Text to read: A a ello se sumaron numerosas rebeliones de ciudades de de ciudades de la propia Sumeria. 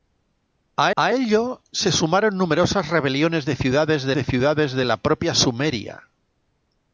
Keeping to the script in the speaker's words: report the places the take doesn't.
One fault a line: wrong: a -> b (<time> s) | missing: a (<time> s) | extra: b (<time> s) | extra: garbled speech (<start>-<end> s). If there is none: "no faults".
no faults